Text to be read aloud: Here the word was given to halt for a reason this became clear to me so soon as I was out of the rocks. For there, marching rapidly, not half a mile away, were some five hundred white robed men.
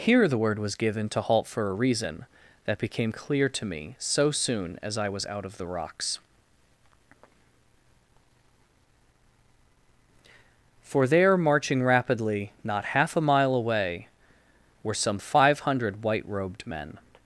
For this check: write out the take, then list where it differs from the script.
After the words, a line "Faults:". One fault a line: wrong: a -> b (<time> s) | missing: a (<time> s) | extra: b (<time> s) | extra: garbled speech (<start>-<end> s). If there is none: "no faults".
Here the word was given to halt for a reason that became clear to me so soon as I was out of the rocks. For there, marching rapidly, not half a mile away, were some five hundred white robed men.
Faults:
wrong: this -> that (2.6 s)